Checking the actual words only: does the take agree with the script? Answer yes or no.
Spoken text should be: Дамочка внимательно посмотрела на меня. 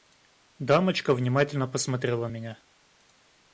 no